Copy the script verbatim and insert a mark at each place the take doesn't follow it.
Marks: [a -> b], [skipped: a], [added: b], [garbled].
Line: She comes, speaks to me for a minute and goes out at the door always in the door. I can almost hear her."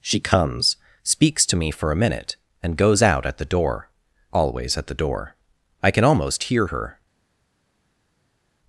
She comes, speaks to me for a minute and goes out at the door always [in -> at] the door. I can almost hear her."